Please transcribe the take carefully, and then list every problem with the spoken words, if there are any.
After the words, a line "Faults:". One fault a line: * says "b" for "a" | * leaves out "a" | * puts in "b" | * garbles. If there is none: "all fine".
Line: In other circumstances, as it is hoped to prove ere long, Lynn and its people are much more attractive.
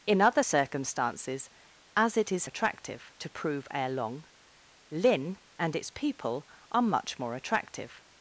In other circumstances, as it is attractive to prove ere long, Lynn and its people are much more attractive.
Faults:
* says "attractive" for "hoped"